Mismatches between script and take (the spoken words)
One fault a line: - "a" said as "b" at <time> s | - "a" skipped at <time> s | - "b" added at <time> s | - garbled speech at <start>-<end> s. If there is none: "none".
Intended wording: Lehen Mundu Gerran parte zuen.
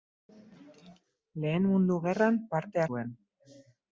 none